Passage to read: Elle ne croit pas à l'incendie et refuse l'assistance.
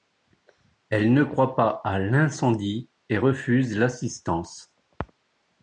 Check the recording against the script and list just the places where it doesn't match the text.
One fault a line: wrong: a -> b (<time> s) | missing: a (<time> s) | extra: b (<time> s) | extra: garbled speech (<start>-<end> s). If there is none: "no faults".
no faults